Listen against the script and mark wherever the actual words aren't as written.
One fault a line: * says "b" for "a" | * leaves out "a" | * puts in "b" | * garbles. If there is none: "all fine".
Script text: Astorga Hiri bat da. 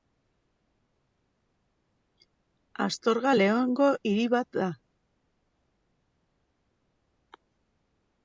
* puts in "Leongo"